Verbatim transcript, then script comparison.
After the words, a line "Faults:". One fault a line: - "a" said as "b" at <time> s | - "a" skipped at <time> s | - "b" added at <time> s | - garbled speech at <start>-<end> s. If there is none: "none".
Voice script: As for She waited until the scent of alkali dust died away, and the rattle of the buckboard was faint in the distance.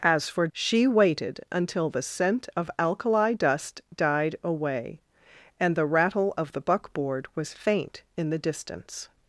As for She waited until the scent of alkali dust died away, and the rattle of the buckboard was faint in the distance.
Faults:
none